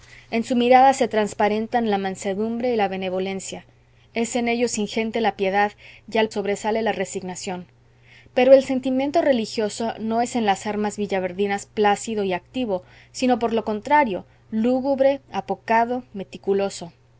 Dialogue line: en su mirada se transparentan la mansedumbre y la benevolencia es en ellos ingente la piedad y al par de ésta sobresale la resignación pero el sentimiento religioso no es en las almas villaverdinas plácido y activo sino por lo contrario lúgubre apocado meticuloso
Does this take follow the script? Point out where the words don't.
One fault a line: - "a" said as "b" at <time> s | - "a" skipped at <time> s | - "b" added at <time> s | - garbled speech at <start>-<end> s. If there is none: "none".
- "par de ésta" skipped at 6.3 s